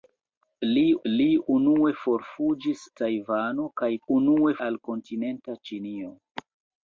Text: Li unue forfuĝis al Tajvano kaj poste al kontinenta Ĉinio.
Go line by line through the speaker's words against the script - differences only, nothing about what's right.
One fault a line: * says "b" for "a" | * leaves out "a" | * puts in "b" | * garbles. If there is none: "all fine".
* puts in "li"
* leaves out "al"
* says "unue" for "poste"